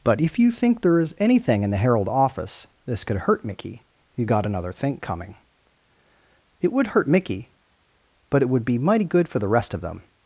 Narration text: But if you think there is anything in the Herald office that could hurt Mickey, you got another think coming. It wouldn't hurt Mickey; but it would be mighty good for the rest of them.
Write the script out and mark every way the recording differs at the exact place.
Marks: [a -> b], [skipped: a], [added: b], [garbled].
But if you think there is anything in the Herald office [that -> this] could hurt Mickey, you got another think coming. It [wouldn't -> would] hurt Mickey; but it would be mighty good for the rest of them.